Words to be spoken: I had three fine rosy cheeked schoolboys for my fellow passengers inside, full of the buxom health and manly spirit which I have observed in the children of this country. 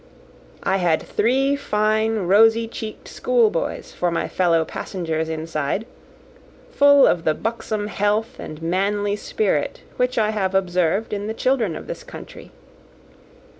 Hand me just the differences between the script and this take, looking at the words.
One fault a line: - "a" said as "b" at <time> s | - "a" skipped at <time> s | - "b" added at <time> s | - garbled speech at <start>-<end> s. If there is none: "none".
none